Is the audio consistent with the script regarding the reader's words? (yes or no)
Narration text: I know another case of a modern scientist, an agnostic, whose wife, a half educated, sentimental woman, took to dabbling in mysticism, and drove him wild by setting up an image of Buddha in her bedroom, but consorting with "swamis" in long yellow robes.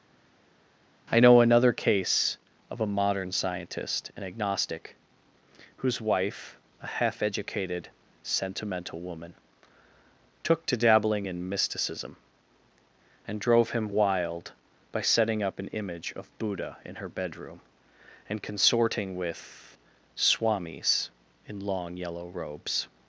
no